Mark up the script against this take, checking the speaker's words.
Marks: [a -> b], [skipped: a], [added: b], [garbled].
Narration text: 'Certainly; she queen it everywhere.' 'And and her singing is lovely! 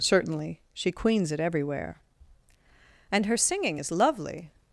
'Certainly; she [queen -> queens] it everywhere.' 'And [skipped: and] her singing is lovely!